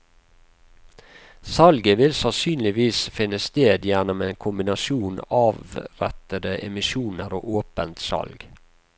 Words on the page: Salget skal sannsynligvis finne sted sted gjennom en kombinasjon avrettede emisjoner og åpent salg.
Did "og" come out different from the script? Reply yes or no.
no